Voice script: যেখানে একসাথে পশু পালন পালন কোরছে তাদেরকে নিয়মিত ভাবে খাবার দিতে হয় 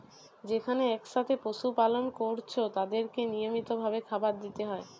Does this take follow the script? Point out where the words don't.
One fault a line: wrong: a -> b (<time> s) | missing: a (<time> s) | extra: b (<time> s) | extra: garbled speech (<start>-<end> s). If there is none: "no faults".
missing: পালন (2.0 s)